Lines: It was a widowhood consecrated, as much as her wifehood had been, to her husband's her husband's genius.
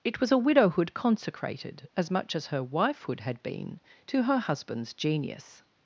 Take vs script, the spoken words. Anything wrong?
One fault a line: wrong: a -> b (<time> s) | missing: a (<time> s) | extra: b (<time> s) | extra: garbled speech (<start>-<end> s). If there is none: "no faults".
missing: her husband's (4.9 s)